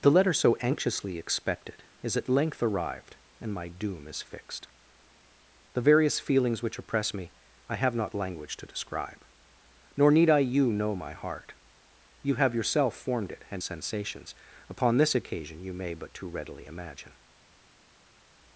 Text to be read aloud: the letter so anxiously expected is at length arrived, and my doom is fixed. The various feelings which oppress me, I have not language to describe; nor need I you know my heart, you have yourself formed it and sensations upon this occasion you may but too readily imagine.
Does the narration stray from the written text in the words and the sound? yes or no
no